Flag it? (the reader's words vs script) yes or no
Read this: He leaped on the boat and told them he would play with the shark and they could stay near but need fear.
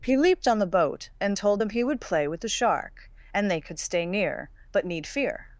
no